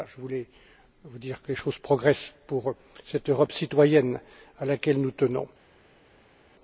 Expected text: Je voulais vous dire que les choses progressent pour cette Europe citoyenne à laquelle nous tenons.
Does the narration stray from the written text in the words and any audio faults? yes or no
no